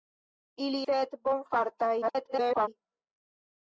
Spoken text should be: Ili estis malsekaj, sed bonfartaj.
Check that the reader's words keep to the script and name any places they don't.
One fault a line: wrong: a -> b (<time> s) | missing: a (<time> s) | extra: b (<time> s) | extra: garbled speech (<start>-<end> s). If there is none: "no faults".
missing: estis malsekaj (0.8 s)
extra: garbled speech (2.0-2.7 s)